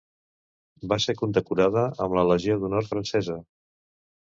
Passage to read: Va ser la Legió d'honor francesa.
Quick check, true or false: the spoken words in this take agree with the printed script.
false